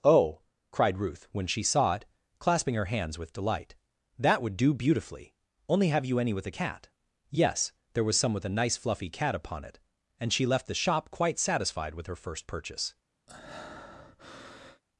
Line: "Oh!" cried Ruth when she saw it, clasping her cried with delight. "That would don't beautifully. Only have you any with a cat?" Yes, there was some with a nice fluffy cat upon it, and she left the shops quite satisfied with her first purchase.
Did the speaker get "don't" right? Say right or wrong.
wrong